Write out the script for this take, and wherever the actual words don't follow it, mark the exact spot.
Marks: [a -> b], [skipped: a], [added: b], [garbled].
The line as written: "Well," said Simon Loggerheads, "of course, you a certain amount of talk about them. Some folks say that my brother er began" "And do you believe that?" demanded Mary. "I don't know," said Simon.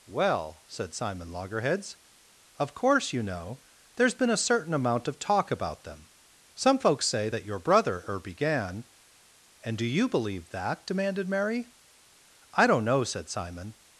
"Well," said Simon Loggerheads, "of course, you [added: know there's been] a certain amount of talk about them. Some folks say that [my -> your] brother er began" "And do you believe that?" demanded Mary. "I don't know," said Simon.